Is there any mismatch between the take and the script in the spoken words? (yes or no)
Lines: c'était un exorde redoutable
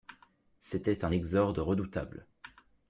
no